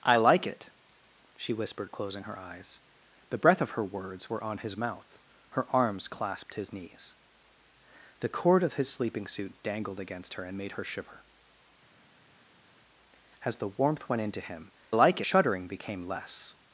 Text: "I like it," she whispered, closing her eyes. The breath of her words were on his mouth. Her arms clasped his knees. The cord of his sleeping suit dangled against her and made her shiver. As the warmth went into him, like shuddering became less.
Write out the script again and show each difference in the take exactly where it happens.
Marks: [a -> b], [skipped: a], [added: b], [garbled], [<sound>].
"I like it," she whispered, closing her eyes. The breath of her words were on his mouth. Her arms clasped his knees. The cord of his sleeping suit dangled against her and made her shiver. As the warmth went into him, like shuddering became less.